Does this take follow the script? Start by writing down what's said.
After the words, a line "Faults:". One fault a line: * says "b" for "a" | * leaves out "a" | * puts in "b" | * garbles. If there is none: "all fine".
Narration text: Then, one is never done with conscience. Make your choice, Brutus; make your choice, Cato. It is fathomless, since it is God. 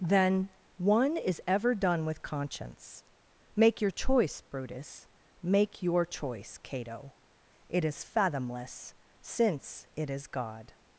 Then, one is ever done with conscience. Make your choice, Brutus; make your choice, Cato. It is fathomless, since it is God.
Faults:
* says "ever" for "never"